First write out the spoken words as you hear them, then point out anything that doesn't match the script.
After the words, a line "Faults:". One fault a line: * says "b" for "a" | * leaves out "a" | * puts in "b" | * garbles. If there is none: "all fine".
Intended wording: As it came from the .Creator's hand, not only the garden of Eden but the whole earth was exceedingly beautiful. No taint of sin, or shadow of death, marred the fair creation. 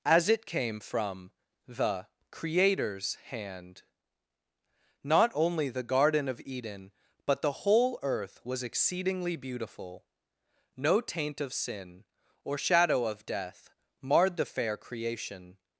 As it came from the .Creator's hand, not only the garden of Eden but the whole earth was exceedingly beautiful. No taint of sin, or shadow of death, marred the fair creation.
Faults:
all fine